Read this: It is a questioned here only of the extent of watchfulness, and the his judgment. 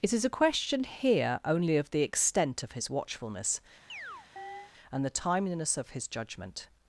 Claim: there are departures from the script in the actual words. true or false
true